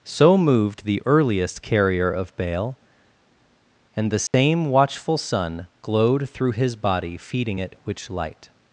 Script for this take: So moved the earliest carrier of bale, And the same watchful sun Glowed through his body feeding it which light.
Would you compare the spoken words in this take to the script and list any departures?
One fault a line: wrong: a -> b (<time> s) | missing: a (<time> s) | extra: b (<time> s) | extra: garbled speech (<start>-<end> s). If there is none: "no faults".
no faults